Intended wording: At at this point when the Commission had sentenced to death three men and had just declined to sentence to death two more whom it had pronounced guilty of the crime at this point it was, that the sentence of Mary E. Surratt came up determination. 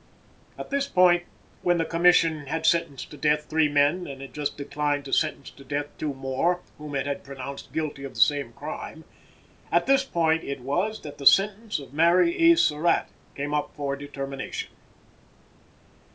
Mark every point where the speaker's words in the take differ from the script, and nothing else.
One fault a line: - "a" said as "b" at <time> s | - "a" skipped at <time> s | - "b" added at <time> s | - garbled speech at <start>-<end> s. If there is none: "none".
- "at" skipped at 0.7 s
- "same" added at 8.2 s
- "for" added at 13.8 s